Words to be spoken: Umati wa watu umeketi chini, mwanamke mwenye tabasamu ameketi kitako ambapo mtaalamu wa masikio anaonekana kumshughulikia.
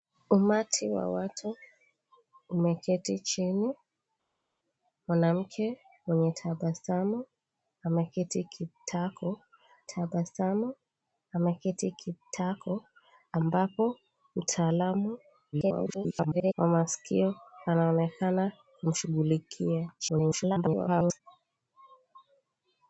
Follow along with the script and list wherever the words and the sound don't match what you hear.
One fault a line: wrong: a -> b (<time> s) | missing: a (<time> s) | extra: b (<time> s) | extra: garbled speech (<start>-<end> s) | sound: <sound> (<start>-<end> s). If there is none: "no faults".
extra: tabasamu ameketi kitako (9.8 s)
extra: garbled speech (15.5-16.5 s)
extra: garbled speech (20.0-21.2 s)